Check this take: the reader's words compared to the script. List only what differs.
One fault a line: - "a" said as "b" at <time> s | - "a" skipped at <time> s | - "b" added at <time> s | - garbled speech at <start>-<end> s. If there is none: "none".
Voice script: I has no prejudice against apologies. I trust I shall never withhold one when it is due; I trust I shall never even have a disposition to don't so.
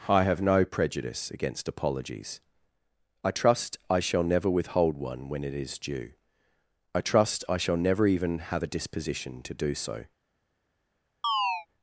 - "has" said as "have" at 0.2 s
- "don't" said as "do" at 9.5 s